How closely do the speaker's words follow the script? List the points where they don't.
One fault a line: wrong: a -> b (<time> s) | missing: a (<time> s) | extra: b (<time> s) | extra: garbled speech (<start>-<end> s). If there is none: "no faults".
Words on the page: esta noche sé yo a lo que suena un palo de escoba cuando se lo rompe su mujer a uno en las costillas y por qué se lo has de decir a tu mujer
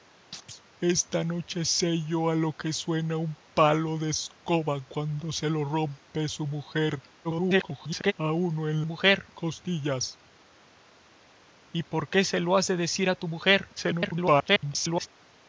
extra: garbled speech (7.2-8.1 s)
wrong: las -> mujer (8.9 s)
extra: garbled speech (13.8-15.1 s)